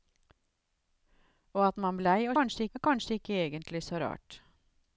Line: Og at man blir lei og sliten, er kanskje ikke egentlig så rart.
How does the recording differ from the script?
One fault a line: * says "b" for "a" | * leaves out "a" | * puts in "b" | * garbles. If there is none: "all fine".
* leaves out "blir"
* says "kanskje" for "sliten"